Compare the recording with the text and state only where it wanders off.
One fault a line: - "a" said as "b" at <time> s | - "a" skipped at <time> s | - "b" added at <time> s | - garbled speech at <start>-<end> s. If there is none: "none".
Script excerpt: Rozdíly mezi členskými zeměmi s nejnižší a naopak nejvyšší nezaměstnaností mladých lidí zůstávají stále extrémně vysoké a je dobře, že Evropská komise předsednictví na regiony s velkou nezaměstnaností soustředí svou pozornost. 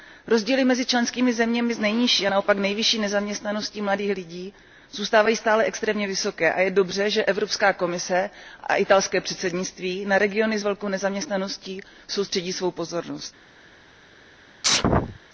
- "a italské" added at 8.6 s